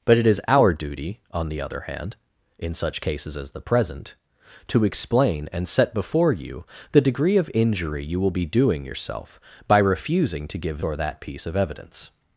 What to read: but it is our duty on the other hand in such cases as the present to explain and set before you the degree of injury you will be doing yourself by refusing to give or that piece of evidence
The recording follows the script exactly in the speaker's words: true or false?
true